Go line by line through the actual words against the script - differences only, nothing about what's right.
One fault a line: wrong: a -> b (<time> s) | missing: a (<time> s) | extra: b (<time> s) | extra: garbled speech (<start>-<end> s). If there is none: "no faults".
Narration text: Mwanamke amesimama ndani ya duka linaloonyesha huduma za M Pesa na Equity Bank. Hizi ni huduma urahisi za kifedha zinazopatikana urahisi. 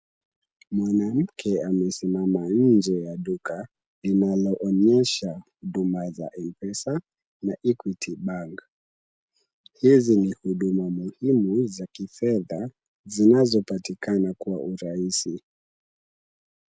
wrong: ndani -> nje (2.5 s)
wrong: urahisi -> muhimu (10.9 s)
extra: kwa (14.4 s)